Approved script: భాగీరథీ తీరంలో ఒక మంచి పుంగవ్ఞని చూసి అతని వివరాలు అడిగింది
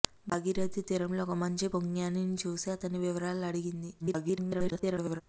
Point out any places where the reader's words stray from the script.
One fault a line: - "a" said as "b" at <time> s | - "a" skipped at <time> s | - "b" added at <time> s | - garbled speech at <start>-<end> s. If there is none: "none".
- garbled speech at 4.0-5.2 s